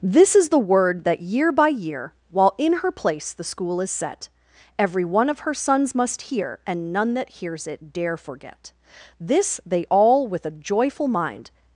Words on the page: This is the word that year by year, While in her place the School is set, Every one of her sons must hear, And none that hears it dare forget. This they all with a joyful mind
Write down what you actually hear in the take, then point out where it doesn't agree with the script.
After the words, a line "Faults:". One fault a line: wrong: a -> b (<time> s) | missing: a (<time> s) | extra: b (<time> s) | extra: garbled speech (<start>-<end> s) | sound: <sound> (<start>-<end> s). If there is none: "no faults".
This is the word that year by year, While in her place the School is set, Every one of her sons must hear, And none that hears it dare forget. This they all with a joyful mind
Faults:
no faults